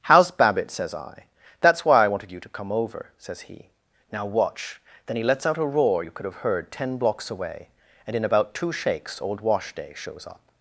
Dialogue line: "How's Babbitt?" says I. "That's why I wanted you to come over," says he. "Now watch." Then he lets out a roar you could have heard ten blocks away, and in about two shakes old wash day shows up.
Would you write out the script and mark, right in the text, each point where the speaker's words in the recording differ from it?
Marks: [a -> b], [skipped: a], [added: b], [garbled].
"How's Babbitt?" says I. "That's why I wanted you to come over," says he. "Now watch." Then he lets out a roar you could have heard ten blocks away, and in about two shakes old wash day shows up.